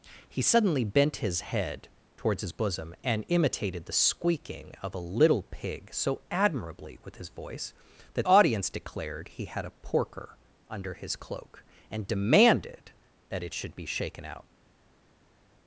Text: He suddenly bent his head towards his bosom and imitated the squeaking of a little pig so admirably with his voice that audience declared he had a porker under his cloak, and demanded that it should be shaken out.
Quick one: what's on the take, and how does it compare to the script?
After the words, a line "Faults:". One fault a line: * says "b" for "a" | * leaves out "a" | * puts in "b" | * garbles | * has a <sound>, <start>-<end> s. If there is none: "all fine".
He suddenly bent his head towards his bosom and imitated the squeaking of a little pig so admirably with his voice that audience declared he had a porker under his cloak, and demanded that it should be shaken out.
Faults:
all fine